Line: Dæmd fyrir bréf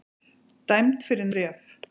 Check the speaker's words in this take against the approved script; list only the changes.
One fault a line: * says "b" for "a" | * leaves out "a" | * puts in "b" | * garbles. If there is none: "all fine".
all fine